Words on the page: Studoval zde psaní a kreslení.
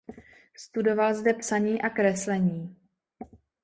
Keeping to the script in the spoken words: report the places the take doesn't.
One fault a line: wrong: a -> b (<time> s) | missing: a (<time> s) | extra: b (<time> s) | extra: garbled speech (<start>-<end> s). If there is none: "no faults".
no faults